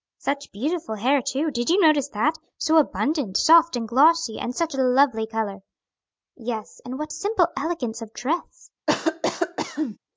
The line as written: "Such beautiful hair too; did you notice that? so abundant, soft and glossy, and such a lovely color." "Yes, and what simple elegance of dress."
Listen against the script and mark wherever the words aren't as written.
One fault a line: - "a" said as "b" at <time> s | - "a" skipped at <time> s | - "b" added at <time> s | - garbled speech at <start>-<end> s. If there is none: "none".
none